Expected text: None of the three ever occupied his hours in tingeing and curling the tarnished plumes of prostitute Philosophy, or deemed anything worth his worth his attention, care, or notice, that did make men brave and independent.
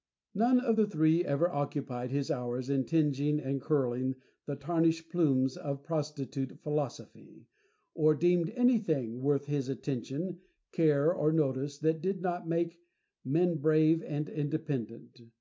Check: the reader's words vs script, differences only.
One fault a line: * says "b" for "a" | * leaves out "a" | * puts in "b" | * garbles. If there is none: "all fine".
* leaves out "worth his"
* puts in "not"